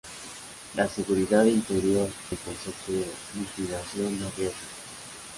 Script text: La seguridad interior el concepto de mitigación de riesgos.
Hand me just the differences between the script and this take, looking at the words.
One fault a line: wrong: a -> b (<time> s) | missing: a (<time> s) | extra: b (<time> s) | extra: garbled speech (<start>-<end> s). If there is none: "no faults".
no faults